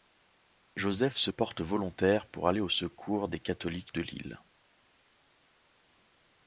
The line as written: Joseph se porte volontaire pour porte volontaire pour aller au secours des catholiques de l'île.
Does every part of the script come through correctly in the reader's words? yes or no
no